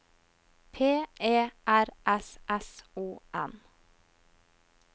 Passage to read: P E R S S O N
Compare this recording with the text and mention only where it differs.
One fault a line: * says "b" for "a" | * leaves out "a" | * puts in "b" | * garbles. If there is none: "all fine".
all fine